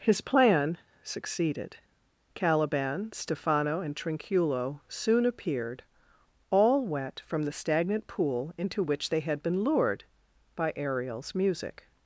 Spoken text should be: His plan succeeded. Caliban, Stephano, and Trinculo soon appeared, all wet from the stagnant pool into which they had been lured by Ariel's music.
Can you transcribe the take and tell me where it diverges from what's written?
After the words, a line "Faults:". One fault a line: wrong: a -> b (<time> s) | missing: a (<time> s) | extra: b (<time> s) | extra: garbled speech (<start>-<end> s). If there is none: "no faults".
His plan succeeded. Caliban, Stephano, and Trinculo soon appeared, all wet from the stagnant pool into which they had been lured by Ariel's music.
Faults:
no faults